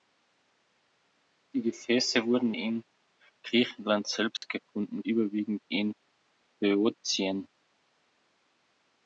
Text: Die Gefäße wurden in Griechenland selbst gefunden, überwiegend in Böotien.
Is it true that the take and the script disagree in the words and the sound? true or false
true